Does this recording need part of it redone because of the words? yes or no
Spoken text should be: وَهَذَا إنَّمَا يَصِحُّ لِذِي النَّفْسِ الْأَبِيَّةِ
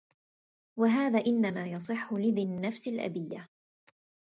no